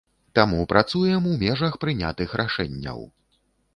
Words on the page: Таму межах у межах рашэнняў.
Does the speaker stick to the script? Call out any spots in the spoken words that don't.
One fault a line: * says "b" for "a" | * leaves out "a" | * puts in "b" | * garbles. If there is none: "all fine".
* says "працуем" for "межах"
* puts in "прынятых"